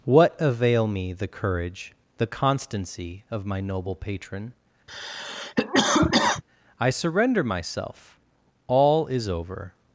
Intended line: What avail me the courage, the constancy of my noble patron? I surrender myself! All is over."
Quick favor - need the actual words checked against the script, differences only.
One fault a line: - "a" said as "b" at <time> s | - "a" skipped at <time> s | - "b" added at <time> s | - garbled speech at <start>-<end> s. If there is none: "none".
none